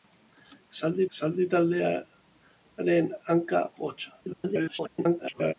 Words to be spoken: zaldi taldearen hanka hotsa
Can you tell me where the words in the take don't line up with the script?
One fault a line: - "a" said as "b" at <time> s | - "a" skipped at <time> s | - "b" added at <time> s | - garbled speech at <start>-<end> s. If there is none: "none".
- "zaldi" added at 1.2 s
- garbled speech at 4.2-5.5 s